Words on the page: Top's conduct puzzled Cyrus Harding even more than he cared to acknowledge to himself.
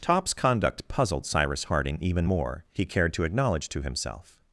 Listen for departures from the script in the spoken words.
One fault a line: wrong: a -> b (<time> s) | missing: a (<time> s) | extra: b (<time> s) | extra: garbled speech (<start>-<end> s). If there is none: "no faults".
missing: than (2.6 s)